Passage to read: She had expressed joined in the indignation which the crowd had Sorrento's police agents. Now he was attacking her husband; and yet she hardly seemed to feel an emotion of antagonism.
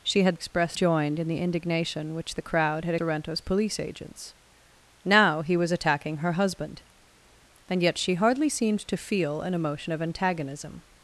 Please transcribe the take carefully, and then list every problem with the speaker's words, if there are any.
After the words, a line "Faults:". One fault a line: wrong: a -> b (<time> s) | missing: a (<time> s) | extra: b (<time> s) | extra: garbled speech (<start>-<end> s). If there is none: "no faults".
She had expressed joined in the indignation which the crowd had Sorrento's police agents. Now he was attacking her husband; and yet she hardly seemed to feel an emotion of antagonism.
Faults:
no faults